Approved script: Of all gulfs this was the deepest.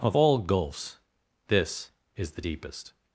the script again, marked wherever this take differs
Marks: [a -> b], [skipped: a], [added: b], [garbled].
Of all gulfs this [was -> is] the deepest.